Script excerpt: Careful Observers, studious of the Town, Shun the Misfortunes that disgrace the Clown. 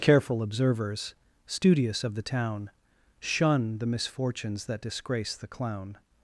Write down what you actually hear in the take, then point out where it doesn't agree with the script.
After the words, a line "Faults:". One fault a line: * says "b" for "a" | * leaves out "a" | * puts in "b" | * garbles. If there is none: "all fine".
Careful Observers, studious of the Town, Shun the Misfortunes that disgrace the Clown.
Faults:
all fine